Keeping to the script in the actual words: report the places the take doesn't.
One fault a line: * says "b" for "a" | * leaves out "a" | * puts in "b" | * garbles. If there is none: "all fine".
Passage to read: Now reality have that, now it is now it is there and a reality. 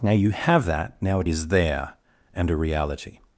* says "you" for "reality"
* leaves out "now it is"